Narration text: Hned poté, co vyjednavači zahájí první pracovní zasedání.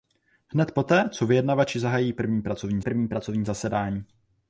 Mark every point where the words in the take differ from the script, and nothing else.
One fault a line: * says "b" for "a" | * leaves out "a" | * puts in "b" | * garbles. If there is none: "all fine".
* puts in "první pracovní"